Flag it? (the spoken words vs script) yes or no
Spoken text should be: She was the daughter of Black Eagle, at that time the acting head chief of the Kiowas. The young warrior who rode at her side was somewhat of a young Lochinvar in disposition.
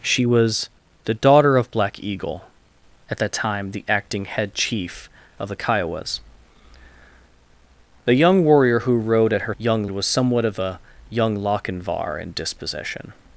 yes